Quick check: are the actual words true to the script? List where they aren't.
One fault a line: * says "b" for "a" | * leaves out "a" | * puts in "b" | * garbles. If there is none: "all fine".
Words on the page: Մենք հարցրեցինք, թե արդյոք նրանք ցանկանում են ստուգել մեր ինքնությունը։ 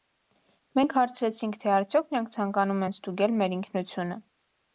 all fine